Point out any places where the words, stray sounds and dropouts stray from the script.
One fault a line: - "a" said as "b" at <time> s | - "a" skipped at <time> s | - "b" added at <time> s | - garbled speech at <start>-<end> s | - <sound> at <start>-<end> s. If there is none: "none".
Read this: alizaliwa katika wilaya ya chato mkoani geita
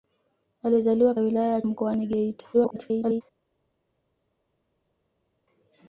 - "katika" skipped at 1.1 s
- "chato" skipped at 1.6 s
- garbled speech at 2.5-3.2 s